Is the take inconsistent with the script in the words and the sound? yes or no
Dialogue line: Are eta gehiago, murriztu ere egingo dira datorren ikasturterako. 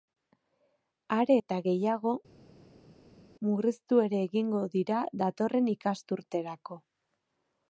no